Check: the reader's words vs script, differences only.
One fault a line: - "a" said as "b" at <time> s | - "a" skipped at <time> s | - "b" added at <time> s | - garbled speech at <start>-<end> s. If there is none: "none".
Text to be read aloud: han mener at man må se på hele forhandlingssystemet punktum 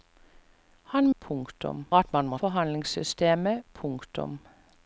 - "mener" said as "punktum" at 1.2 s
- "se på hele" skipped at 2.4 s